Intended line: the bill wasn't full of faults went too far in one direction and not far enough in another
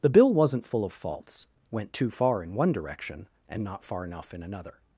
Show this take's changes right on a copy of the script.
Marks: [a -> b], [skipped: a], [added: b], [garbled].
the bill wasn't full of faults went too far in one direction and not far enough in another